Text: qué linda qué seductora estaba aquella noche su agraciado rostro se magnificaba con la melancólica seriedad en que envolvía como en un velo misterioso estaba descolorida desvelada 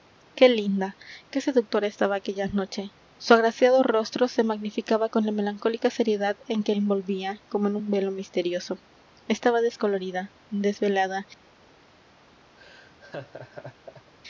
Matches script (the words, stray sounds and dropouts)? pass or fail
fail